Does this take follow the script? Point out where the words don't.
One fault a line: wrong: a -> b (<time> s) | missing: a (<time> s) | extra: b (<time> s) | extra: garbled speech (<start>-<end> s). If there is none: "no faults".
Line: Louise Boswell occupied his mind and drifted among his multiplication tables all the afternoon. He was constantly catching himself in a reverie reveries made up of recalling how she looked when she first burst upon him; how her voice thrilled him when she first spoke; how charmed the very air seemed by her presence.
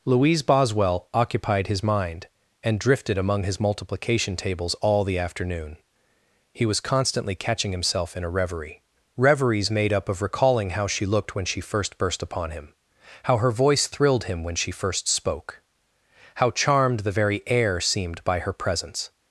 no faults